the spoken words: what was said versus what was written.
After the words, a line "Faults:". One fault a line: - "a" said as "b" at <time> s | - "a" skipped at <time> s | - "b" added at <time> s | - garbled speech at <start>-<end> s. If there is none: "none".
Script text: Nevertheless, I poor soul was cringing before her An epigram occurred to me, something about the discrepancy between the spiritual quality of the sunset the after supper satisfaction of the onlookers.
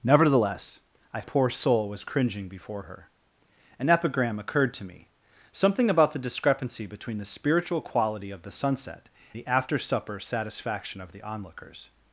Nevertheless, I poor soul was cringing before her An epigram occurred to me, something about the discrepancy between the spiritual quality of the sunset the after supper satisfaction of the onlookers.
Faults:
none